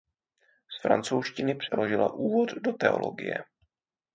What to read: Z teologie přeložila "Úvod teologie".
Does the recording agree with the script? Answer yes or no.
no